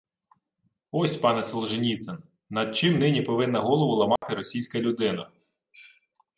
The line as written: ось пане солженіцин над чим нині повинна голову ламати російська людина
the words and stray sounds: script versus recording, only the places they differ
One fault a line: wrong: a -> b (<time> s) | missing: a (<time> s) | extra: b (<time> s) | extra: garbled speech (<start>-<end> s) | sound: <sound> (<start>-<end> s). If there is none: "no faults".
sound: dropout (4.2-4.2 s)